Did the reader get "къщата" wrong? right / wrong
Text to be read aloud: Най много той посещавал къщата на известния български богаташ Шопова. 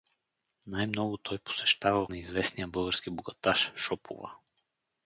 wrong